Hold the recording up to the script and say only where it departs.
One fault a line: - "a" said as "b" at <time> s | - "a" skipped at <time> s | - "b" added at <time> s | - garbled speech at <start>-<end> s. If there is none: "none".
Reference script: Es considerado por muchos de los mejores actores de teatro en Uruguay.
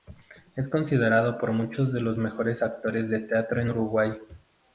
none